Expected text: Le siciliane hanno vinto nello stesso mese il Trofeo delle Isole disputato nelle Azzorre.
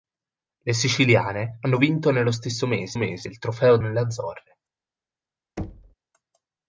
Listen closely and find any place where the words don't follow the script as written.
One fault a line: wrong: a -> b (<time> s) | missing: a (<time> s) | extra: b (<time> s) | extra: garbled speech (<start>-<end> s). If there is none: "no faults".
extra: mese (2.9 s)
missing: delle Isole disputato (3.8 s)